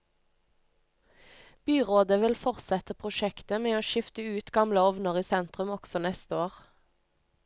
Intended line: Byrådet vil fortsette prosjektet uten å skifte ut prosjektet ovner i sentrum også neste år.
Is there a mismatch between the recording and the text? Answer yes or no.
yes